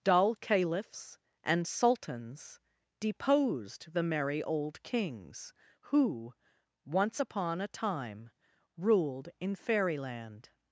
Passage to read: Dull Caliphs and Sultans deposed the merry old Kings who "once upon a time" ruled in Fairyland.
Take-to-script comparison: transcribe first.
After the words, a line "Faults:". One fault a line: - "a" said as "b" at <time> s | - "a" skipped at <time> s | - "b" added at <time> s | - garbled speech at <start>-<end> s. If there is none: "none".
Dull Caliphs and Sultans deposed the merry old Kings who "once upon a time" ruled in Fairyland.
Faults:
none